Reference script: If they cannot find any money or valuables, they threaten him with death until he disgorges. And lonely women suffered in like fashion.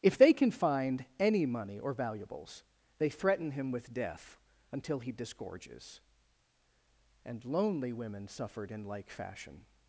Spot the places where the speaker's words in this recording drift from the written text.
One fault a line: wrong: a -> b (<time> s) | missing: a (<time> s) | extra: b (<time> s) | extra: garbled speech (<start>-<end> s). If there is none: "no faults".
wrong: cannot -> can (0.3 s)